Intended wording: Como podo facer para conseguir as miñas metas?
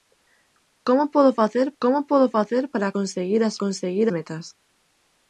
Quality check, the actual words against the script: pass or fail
fail